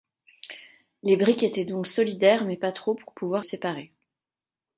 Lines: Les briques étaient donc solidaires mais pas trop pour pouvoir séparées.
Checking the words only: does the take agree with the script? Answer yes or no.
yes